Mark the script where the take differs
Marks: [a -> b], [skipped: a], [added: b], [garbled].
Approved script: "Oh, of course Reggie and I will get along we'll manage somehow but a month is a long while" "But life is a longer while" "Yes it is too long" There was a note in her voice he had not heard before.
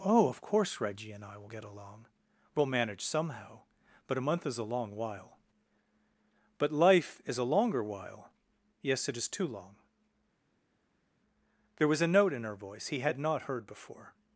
"Oh, of course Reggie and I will get along we'll manage somehow but a month is a long while" "But life is a longer while" "Yes it is too long" There was a note in her voice he had not heard before.